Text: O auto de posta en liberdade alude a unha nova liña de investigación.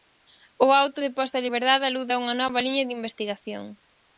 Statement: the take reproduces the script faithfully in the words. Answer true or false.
true